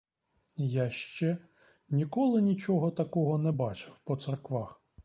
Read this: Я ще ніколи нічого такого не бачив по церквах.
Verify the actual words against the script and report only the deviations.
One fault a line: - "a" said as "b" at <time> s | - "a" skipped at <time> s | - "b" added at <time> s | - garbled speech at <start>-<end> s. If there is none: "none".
none